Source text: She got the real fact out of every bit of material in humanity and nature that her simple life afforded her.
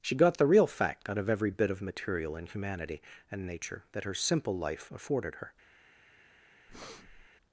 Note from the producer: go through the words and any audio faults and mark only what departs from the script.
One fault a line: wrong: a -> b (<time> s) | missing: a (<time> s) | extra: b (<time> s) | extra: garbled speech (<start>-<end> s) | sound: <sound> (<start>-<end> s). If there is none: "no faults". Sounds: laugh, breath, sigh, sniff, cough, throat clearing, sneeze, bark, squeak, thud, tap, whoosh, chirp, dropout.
sound: breath (6.7-7.3 s)